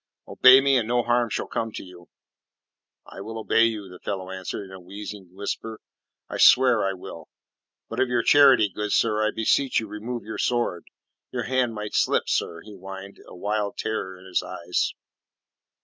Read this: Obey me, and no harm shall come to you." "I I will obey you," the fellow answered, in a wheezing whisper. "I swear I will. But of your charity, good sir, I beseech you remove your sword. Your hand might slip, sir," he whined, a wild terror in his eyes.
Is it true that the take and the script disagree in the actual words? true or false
true